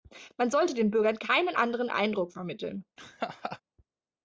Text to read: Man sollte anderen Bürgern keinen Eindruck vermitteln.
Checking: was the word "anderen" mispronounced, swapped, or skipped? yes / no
yes